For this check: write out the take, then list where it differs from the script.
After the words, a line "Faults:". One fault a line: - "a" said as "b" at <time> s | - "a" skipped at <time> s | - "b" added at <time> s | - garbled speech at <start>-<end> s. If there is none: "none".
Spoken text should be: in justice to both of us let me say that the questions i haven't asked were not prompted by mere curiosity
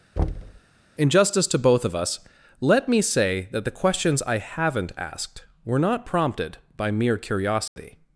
in justice to both of us let me say that the questions i haven't asked were not prompted by mere curiosity
Faults:
none